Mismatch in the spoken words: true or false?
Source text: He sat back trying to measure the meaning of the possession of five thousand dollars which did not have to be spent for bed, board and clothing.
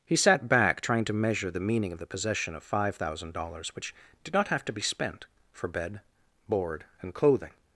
false